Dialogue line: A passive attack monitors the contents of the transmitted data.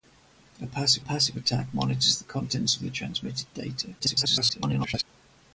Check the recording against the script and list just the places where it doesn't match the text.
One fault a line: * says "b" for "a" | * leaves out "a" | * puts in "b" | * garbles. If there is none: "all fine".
* puts in "passive"
* garbles